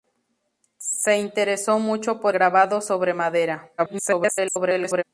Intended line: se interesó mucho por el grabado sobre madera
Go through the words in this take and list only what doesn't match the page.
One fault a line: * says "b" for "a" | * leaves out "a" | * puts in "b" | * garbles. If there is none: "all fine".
* leaves out "el"
* garbles